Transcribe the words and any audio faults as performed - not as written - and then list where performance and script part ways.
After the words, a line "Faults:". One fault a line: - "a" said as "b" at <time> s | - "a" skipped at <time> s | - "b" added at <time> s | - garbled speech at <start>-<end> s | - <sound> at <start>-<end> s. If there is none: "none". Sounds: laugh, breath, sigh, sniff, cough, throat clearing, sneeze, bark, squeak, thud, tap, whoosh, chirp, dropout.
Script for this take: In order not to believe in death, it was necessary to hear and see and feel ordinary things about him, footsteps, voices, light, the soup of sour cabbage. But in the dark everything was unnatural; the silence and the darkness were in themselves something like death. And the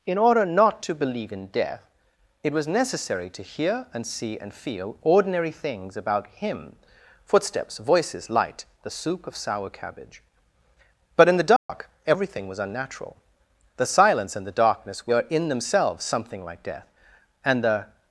In order not to believe in death, it was necessary to hear and see and feel ordinary things about him, footsteps, voices, light, the soup of sour cabbage. But in the dark everything was unnatural; the silence and the darkness were in themselves something like death. And the
Faults:
- dropout at 11.6-11.7 s